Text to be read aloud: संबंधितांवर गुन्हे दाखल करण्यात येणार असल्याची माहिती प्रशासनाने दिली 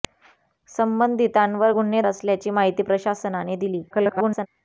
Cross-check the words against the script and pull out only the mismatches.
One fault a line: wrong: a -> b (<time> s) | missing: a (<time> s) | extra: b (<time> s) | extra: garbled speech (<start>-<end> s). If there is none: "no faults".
missing: दाखल करण्यात येणार (2.0 s)
extra: garbled speech (3.9-4.5 s)